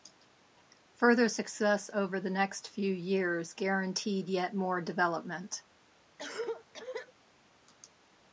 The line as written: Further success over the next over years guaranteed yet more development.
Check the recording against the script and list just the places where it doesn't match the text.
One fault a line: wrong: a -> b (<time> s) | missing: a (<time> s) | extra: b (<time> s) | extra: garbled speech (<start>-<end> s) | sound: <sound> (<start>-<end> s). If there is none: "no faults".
wrong: over -> few (2.7 s)
sound: cough (6.2-7.1 s)